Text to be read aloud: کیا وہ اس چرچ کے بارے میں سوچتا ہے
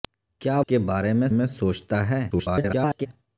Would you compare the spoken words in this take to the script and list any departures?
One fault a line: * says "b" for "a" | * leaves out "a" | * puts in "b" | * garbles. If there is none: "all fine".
* leaves out "وہ اس چرچ"
* puts in "میں"
* garbles